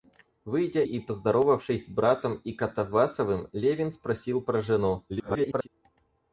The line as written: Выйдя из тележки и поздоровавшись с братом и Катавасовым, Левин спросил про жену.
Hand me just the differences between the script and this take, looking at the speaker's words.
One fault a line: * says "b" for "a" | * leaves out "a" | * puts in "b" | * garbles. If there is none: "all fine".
* leaves out "из тележки"
* garbles